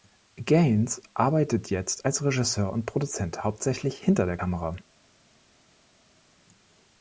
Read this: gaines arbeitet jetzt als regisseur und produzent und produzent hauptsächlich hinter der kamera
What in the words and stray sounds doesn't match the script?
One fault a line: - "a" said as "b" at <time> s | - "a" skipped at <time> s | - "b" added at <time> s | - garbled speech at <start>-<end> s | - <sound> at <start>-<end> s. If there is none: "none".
- "und produzent" skipped at 3.4 s